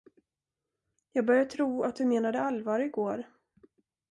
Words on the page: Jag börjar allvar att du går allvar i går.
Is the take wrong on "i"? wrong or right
right